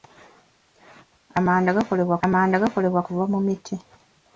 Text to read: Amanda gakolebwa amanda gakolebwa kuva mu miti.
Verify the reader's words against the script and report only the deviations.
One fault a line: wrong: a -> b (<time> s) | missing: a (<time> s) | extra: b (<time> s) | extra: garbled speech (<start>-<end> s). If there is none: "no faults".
no faults